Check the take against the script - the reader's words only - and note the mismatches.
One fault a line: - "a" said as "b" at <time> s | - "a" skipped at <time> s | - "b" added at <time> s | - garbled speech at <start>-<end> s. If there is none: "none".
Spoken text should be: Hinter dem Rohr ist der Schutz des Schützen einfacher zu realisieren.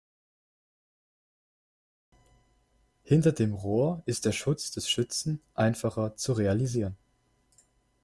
none